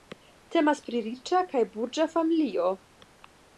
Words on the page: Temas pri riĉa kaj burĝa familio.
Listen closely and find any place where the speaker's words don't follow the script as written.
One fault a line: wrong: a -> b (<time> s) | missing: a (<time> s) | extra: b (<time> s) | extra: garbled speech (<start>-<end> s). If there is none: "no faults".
no faults